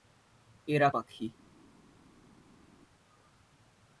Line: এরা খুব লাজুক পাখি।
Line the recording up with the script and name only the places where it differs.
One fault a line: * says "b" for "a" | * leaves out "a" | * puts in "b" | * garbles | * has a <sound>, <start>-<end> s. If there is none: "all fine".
* leaves out "খুব লাজুক"